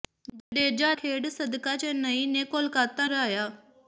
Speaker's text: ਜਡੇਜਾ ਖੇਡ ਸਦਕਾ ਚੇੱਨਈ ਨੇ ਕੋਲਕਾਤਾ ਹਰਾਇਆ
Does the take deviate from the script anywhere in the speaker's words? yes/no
no